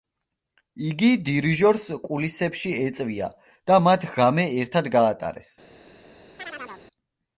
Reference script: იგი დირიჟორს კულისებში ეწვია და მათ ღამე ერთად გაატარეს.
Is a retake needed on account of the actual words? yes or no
no